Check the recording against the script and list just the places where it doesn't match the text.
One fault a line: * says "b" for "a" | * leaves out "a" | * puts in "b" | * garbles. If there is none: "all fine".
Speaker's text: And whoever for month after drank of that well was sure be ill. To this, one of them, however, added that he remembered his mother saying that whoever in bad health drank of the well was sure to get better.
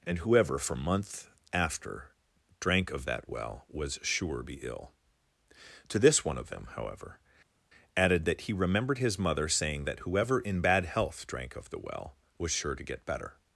all fine